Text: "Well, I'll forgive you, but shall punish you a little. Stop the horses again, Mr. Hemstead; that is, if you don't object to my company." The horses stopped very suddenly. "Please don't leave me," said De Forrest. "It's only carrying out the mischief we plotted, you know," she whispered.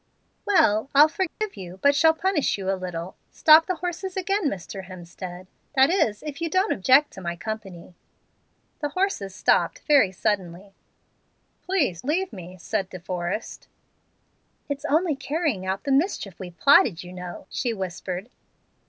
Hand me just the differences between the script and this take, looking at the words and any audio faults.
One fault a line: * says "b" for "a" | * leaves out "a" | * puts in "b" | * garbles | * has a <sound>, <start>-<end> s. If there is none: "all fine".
* has a dropout, 1.3-1.4 s
* leaves out "don't"